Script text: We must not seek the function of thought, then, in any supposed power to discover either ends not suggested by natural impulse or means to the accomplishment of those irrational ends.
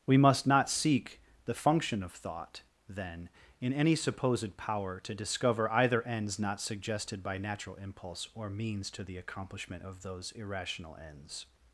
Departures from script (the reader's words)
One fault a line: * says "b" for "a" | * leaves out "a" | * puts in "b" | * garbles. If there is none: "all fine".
all fine